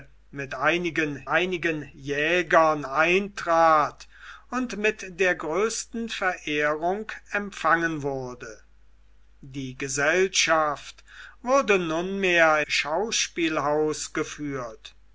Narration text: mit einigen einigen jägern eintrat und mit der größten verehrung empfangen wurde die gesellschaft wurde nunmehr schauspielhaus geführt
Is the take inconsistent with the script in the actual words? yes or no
no